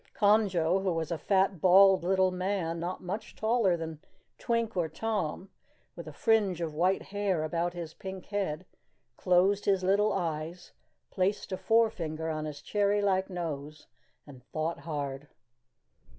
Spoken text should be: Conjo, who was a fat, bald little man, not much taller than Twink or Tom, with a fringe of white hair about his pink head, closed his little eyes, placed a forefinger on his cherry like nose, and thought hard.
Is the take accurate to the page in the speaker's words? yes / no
yes